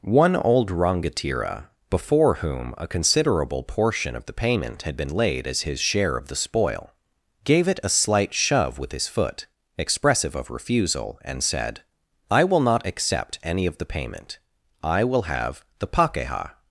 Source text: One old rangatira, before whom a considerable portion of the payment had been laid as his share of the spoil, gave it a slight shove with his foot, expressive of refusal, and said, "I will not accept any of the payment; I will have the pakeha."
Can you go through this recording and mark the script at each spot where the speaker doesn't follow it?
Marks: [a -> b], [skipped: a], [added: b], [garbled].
One old rangatira, before whom a considerable portion of the payment had been laid as his share of the spoil, gave it a slight shove with his foot, expressive of refusal, and said, "I will not accept any of the payment; I will have the pakeha."